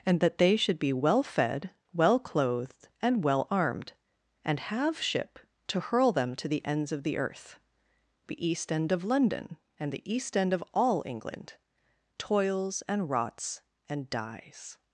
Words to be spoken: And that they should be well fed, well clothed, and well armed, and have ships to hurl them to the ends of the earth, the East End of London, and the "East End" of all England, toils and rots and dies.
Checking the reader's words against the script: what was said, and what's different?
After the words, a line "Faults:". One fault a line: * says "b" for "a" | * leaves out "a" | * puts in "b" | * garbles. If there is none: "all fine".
And that they should be well fed, well clothed, and well armed, and have ship to hurl them to the ends of the earth, the East End of London, and the "East End" of all England, toils and rots and dies.
Faults:
* says "ship" for "ships"